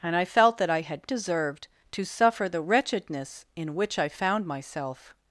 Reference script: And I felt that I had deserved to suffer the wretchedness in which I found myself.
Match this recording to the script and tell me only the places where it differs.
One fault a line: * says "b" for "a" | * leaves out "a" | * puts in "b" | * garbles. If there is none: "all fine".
all fine